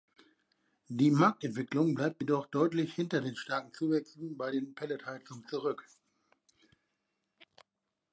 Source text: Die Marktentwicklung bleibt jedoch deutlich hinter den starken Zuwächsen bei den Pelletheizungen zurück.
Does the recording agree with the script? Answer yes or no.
yes